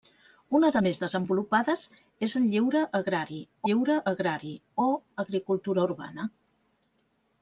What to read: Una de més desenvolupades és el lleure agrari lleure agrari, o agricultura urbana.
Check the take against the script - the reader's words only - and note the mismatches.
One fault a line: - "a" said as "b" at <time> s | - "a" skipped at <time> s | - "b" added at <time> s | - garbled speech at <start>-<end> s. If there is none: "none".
none